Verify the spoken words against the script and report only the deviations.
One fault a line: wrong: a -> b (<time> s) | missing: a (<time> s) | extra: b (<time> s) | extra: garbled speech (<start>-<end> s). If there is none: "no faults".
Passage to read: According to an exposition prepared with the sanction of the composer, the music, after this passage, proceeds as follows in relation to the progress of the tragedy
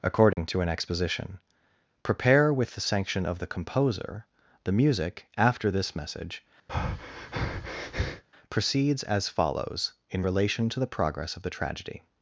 wrong: prepared -> prepare (2.0 s)
wrong: passage -> message (6.0 s)